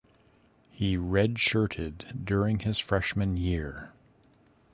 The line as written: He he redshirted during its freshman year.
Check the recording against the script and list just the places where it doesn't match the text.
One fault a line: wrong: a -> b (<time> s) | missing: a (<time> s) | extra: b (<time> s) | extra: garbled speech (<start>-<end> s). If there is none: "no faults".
missing: he (1.0 s)
wrong: its -> his (2.6 s)